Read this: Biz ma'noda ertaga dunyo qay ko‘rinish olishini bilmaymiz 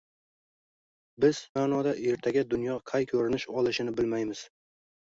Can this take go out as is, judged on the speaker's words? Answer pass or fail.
pass